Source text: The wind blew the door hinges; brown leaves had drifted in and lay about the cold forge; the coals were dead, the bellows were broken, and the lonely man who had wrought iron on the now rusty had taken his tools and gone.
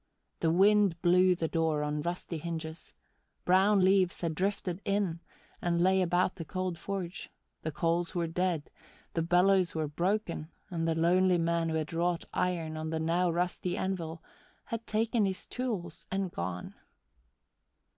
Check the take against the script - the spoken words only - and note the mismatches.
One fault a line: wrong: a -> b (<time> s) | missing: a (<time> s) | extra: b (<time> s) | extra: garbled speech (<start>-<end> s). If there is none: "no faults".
extra: on rusty (1.8 s)
extra: anvil (13.7 s)